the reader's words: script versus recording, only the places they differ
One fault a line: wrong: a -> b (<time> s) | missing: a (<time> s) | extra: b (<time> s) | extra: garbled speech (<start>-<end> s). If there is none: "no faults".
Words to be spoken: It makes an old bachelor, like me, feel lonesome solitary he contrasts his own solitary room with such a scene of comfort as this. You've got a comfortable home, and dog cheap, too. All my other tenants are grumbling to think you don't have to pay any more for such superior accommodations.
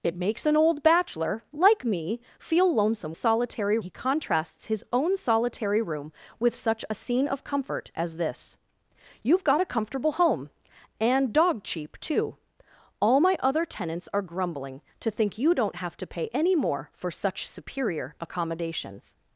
no faults